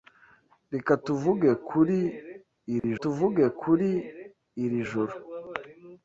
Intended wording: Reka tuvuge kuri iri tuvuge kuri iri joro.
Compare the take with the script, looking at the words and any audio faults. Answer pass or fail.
fail